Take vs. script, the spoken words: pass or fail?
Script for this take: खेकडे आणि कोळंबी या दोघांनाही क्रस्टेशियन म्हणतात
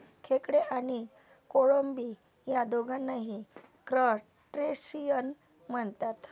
pass